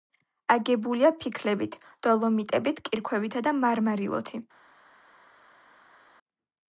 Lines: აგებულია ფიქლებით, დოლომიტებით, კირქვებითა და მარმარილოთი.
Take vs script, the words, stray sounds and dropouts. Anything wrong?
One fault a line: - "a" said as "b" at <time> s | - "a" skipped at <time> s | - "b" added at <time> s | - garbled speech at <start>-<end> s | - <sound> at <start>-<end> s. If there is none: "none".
none